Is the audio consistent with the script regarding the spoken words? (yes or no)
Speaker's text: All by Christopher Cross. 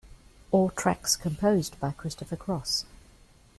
no